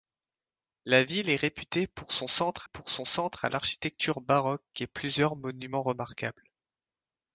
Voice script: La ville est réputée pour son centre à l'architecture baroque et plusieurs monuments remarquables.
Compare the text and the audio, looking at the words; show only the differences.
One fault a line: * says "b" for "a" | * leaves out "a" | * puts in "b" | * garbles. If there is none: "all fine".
* puts in "pour son centre"